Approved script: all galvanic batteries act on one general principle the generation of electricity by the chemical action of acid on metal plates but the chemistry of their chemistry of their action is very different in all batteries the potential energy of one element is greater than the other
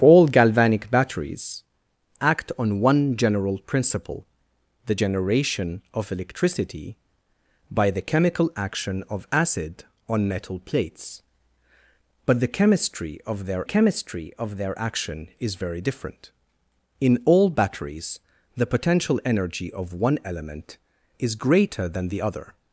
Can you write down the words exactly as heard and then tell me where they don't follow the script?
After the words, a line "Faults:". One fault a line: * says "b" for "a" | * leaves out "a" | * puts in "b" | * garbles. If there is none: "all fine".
all galvanic batteries act on one general principle the generation of electricity by the chemical action of acid on metal plates but the chemistry of their chemistry of their action is very different in all batteries the potential energy of one element is greater than the other
Faults:
all fine